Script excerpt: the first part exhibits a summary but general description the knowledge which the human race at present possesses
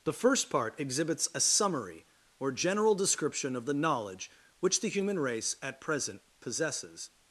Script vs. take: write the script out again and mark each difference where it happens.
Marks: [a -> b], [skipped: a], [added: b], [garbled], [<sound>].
the first part exhibits a summary [but -> or] general description [added: of] the knowledge which the human race at present possesses